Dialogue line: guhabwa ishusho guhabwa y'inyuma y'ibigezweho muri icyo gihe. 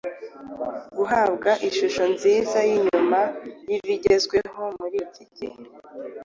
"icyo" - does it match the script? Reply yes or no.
no